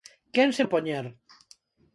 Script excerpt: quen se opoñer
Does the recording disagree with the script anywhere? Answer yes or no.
no